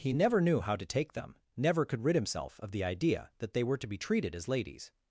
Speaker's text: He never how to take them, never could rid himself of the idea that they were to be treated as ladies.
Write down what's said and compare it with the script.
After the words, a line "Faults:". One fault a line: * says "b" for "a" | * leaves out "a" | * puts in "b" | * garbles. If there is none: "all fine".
He never knew how to take them, never could rid himself of the idea that they were to be treated as ladies.
Faults:
* puts in "knew"